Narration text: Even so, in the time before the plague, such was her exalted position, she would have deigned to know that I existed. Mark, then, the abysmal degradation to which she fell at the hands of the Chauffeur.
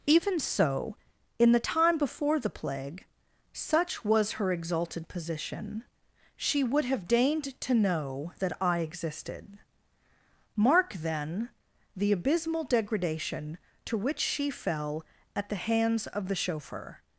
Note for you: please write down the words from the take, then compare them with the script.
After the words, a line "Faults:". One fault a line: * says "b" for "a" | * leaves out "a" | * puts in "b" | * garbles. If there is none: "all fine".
Even so, in the time before the plague, such was her exalted position, she would have deigned to know that I existed. Mark, then, the abysmal degradation to which she fell at the hands of the Chauffeur.
Faults:
all fine